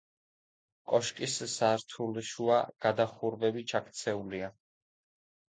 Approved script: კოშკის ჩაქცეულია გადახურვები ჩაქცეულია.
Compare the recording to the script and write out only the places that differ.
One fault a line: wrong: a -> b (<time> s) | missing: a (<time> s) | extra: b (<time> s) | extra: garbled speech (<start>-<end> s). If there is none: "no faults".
wrong: ჩაქცეულია -> სართულშუა (1.6 s)